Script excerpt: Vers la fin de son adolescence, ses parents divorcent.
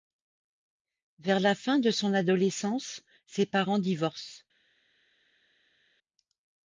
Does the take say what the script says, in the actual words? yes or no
yes